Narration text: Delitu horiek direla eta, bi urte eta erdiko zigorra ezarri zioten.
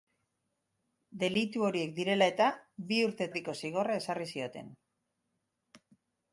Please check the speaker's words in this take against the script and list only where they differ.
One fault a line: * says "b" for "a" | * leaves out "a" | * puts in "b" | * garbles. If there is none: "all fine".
* leaves out "eta"